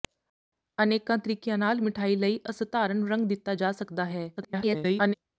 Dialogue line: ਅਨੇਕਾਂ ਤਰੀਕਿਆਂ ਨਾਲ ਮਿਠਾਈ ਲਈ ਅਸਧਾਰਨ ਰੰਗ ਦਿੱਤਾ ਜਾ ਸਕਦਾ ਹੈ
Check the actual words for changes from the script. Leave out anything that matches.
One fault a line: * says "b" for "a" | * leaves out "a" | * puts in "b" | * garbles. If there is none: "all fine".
* garbles